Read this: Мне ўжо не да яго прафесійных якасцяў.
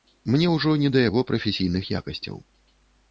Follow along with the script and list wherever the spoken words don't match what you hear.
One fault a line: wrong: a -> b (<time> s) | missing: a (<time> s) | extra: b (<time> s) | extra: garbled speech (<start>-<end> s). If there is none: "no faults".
no faults